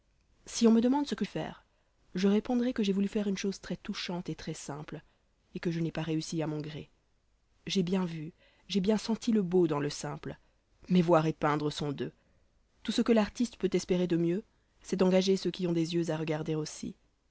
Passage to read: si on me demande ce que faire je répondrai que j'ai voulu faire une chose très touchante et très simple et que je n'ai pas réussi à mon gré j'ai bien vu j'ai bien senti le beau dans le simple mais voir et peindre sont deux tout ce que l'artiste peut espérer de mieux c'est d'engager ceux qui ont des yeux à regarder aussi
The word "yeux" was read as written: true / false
true